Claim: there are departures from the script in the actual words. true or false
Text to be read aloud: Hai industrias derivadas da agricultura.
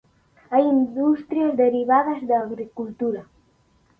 false